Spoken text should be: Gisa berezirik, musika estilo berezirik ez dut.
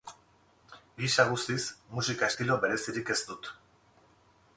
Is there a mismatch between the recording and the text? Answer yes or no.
yes